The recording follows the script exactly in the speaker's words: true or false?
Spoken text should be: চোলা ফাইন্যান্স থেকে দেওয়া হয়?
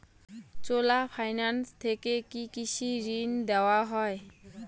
false